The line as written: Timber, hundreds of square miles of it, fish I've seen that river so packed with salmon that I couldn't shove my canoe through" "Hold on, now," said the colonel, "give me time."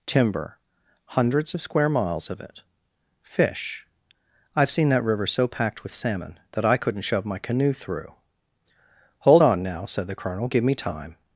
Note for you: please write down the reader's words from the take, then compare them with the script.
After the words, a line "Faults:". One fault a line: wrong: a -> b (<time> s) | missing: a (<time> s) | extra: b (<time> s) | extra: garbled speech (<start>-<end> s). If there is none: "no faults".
Timber, hundreds of square miles of it, fish I've seen that river so packed with salmon that I couldn't shove my canoe through" "Hold on, now," said the colonel, "give me time."
Faults:
no faults